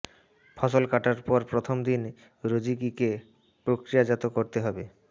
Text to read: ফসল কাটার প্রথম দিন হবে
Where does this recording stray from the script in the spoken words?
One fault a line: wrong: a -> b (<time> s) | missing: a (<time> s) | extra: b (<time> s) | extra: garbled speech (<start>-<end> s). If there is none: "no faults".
extra: পর (1.3 s)
extra: রোজিকিকে প্রক্রিয়াজাত করতে (2.4 s)